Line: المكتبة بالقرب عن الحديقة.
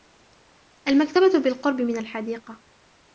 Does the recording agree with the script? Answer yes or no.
no